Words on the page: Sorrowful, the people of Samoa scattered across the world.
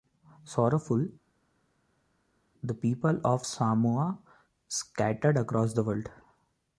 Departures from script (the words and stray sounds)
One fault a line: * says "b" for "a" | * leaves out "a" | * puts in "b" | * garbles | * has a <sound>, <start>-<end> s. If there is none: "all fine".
all fine